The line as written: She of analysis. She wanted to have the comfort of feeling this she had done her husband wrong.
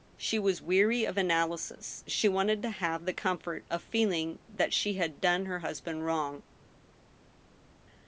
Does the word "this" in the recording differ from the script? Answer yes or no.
yes